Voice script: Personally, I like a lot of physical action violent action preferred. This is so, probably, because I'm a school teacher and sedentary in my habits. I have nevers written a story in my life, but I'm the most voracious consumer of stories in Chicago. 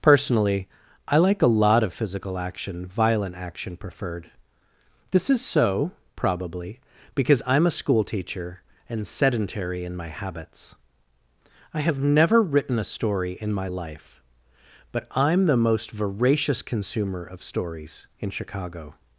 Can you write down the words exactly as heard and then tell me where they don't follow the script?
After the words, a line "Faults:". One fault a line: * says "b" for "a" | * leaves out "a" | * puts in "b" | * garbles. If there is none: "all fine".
Personally, I like a lot of physical action violent action preferred. This is so, probably, because I'm a school teacher and sedentary in my habits. I have never written a story in my life, but I'm the most voracious consumer of stories in Chicago.
Faults:
* says "never" for "nevers"